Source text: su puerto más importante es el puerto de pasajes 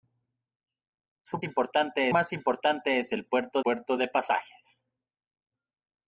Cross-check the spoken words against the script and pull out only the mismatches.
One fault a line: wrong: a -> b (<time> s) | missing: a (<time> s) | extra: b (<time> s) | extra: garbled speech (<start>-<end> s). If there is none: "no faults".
wrong: puerto -> importante (1.4 s)
extra: puerto (3.6 s)